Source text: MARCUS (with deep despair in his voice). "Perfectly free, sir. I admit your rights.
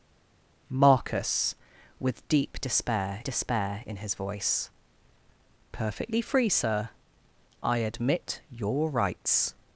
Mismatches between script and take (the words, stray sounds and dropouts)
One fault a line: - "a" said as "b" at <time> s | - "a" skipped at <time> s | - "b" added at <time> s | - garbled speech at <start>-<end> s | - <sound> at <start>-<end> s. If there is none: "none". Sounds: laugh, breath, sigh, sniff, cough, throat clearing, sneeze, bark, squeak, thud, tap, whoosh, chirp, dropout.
- "despair" added at 3.2 s